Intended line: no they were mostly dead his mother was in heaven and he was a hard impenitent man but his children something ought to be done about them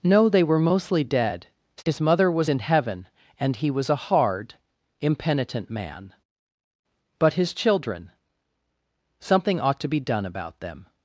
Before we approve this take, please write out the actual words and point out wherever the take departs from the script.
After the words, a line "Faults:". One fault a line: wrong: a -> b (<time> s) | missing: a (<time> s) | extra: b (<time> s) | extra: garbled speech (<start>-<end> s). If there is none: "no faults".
no they were mostly dead his mother was in heaven and he was a hard impenitent man but his children something ought to be done about them
Faults:
no faults